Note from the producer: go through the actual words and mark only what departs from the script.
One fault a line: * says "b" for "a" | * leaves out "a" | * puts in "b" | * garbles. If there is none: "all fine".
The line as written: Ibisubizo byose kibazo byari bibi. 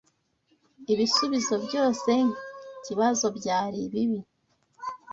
all fine